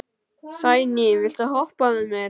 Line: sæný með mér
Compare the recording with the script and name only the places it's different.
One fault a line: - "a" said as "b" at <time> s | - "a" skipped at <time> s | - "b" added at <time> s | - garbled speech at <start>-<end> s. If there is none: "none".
- "viltu hoppa" added at 1.2 s